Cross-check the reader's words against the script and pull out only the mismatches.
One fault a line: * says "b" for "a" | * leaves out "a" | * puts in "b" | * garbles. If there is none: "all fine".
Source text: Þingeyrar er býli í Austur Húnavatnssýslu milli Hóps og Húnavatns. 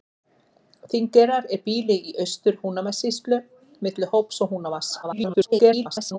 * garbles